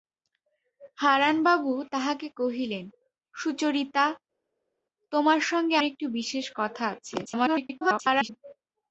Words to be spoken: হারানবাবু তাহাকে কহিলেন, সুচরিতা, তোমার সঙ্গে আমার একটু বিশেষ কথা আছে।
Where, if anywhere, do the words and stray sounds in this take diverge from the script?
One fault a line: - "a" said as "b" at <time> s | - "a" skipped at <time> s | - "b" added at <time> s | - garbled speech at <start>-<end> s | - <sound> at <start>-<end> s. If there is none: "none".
- "আমার" skipped at 5.8 s
- garbled speech at 7.2-8.3 s